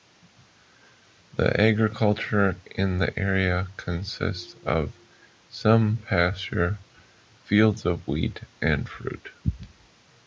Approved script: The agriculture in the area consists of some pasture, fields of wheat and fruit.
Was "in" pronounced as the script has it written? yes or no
yes